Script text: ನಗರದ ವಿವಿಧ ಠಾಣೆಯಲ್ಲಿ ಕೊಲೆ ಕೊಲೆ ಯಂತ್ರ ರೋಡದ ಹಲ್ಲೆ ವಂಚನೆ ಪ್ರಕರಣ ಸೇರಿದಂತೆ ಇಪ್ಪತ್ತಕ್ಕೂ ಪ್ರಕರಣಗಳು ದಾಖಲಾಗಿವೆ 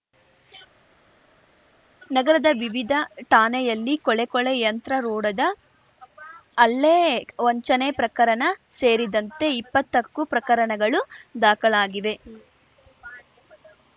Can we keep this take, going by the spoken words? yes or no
yes